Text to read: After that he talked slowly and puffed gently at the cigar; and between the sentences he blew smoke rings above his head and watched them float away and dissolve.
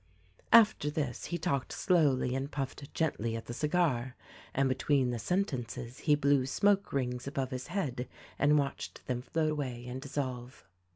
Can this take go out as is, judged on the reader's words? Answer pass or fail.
fail